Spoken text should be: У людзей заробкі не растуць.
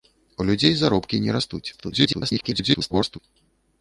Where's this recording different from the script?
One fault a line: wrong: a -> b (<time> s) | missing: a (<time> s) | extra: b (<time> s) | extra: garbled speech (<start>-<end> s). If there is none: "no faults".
extra: garbled speech (1.7-3.2 s)